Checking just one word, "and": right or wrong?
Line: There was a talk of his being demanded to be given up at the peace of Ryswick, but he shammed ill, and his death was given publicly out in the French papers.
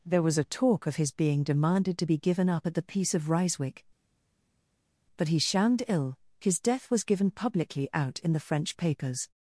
wrong